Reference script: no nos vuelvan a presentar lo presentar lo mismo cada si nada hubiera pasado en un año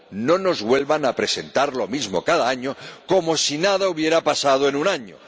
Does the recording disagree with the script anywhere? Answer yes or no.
yes